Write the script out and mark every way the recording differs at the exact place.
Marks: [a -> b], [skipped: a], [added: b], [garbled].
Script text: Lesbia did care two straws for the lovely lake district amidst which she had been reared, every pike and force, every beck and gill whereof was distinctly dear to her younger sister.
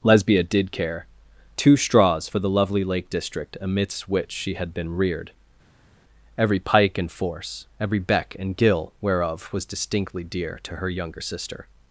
Lesbia did care two straws for the lovely lake district amidst which she had been reared, every pike and force, every beck and gill whereof was distinctly dear to her younger sister.